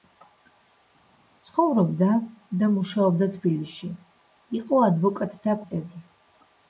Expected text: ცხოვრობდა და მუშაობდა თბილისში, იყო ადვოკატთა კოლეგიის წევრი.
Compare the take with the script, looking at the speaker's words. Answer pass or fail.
fail